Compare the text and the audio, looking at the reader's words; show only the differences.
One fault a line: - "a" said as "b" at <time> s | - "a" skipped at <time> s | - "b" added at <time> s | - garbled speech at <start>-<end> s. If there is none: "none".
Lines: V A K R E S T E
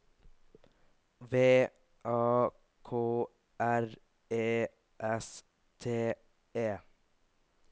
none